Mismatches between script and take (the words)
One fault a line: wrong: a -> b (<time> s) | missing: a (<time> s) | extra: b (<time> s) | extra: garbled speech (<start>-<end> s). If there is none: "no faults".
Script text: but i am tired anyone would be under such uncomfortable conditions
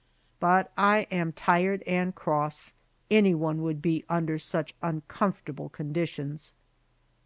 extra: and cross (1.9 s)